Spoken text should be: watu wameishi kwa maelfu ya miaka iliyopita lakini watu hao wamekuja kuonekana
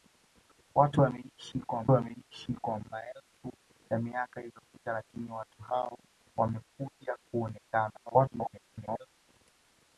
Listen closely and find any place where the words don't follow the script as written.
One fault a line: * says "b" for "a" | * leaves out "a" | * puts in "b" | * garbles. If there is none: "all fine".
* puts in "wameishi kwa"
* garbles